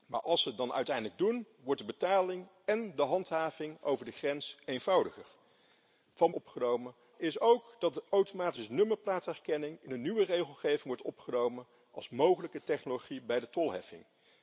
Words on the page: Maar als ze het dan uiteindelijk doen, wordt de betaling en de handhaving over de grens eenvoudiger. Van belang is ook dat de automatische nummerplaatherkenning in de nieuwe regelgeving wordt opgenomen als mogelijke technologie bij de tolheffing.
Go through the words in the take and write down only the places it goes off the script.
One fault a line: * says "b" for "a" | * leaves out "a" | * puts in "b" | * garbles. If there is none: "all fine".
* says "opgenomen" for "belang"